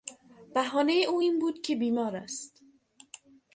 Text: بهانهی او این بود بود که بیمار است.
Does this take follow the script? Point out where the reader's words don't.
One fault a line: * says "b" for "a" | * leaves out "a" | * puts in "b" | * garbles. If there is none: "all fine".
* leaves out "بود"